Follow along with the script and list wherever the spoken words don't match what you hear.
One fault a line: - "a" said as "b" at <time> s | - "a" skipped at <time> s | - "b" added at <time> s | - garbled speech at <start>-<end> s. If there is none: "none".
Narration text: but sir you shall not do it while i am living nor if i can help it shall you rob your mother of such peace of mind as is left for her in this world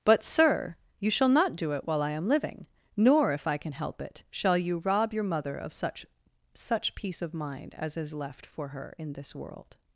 - "such" added at 6.5 s